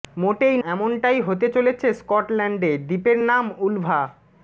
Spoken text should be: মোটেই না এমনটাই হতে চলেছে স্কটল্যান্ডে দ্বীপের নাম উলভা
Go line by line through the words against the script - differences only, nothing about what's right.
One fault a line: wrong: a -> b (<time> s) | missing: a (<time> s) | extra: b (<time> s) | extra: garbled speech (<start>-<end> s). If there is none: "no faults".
missing: না (0.6 s)